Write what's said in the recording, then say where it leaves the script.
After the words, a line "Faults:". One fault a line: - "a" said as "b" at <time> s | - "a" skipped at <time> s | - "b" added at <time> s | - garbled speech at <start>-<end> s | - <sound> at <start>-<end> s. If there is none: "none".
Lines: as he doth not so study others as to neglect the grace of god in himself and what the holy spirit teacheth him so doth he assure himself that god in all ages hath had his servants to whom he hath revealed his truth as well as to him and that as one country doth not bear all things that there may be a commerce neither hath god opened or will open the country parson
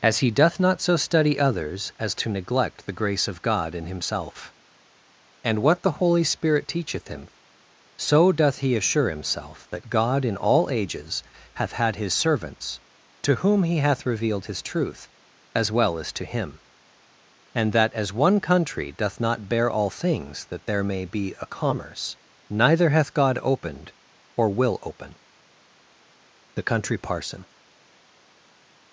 as he doth not so study others as to neglect the grace of god in himself and what the holy spirit teacheth him so doth he assure himself that god in all ages hath had his servants to whom he hath revealed his truth as well as to him and that as one country doth not bear all things that there may be a commerce neither hath god opened or will open the country parson
Faults:
none